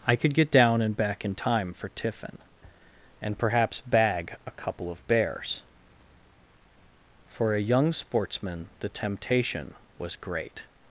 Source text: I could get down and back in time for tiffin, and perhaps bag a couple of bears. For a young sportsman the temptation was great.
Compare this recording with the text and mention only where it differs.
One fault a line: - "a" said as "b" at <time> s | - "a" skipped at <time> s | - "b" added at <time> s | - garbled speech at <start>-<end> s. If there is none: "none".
none